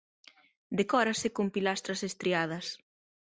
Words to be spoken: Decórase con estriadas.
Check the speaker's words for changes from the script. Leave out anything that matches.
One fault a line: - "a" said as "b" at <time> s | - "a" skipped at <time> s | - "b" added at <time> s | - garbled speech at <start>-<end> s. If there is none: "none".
- "pilastras" added at 1.6 s